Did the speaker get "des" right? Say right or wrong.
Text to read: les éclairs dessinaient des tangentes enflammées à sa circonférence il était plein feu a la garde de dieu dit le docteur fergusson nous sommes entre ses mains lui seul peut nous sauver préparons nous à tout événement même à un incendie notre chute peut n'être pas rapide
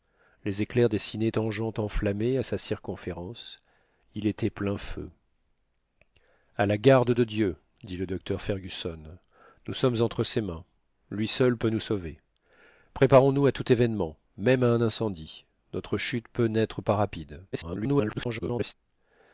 wrong